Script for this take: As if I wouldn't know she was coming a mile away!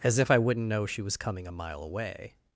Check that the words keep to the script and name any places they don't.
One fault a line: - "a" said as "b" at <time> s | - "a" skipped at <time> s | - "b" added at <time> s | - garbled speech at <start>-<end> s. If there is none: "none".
none